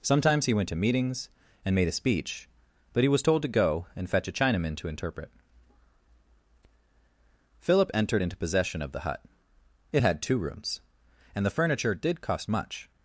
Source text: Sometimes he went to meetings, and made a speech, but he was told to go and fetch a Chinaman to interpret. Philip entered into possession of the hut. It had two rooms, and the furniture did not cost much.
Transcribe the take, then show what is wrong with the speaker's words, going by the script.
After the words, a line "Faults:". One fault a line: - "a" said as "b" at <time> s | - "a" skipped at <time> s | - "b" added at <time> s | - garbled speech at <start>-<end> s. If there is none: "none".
Sometimes he went to meetings, and made a speech, but he was told to go and fetch a Chinaman to interpret. Philip entered into possession of the hut. It had two rooms, and the furniture did cost much.
Faults:
- "not" skipped at 12.2 s